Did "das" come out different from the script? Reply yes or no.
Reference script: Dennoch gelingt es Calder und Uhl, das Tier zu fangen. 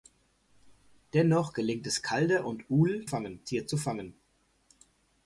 yes